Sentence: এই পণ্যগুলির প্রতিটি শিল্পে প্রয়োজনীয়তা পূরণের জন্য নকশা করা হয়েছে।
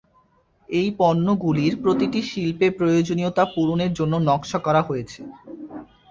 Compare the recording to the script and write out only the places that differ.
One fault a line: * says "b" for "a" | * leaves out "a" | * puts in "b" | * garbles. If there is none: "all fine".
all fine